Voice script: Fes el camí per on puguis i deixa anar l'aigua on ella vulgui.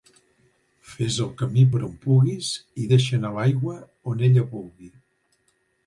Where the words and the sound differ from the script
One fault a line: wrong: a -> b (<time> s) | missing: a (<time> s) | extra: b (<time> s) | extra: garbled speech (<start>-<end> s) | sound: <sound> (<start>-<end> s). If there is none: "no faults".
no faults